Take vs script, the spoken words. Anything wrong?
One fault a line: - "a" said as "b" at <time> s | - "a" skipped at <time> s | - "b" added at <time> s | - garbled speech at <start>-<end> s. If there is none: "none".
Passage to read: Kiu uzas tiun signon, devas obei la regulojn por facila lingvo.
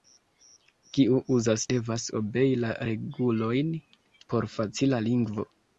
- "tiun signon" skipped at 1.6 s